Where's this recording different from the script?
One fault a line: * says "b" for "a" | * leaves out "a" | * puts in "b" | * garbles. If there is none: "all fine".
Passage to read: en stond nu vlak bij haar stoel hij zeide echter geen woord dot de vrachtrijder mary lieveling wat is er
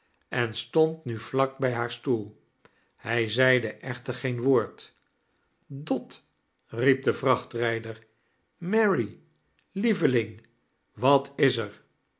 * puts in "riep"